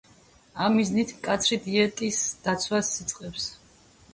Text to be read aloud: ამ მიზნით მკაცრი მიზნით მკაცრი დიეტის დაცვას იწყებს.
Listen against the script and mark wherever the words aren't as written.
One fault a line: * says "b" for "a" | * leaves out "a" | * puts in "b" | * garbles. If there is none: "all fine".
* leaves out "მიზნით მკაცრი"